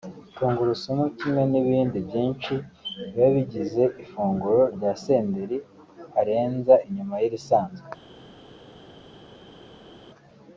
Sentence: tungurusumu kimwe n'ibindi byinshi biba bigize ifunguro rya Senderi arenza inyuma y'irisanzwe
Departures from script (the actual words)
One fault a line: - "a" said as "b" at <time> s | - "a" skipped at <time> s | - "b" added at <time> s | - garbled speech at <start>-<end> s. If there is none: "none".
none